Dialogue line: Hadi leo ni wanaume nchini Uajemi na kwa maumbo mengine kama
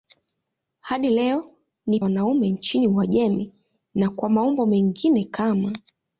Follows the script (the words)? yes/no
yes